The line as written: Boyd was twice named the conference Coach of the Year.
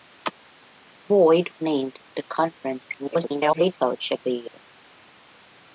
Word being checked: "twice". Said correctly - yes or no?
no